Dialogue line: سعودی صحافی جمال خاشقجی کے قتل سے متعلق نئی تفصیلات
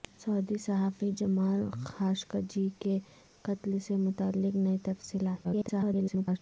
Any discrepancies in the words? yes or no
yes